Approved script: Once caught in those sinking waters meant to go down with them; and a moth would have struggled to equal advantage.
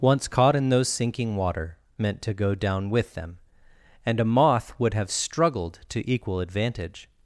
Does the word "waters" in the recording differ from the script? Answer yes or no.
yes